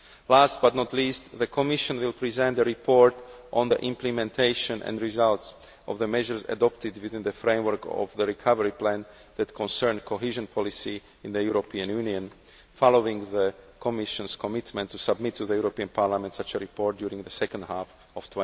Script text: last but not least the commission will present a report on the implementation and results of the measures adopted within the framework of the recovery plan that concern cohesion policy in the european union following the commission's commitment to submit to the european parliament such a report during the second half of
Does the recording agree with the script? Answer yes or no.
yes